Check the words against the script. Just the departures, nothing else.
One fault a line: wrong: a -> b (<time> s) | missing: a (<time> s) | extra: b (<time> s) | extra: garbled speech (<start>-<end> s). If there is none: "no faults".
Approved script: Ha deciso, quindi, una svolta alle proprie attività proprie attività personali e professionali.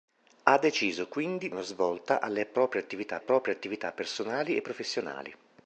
no faults